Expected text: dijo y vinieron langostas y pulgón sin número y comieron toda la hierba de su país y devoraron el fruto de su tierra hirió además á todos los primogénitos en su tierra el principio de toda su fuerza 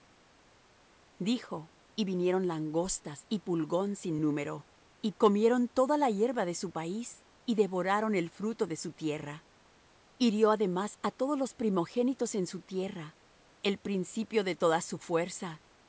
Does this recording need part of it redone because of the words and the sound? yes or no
no